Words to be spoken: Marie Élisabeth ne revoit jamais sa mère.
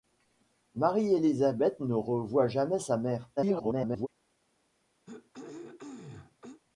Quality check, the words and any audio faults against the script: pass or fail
fail